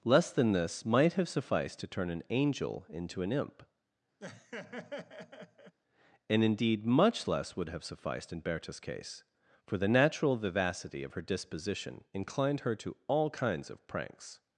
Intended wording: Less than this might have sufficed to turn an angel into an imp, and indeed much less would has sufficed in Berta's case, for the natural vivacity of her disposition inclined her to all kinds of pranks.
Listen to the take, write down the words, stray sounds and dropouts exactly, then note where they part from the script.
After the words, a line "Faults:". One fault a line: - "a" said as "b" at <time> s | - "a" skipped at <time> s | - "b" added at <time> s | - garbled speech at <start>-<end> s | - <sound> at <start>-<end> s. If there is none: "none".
Less than this might have sufficed to turn an angel into an imp, and indeed much less would have sufficed in Berta's case, for the natural vivacity of her disposition inclined her to all kinds of pranks.
Faults:
- laugh at 4.2-5.8 s
- "has" said as "have" at 7.7 s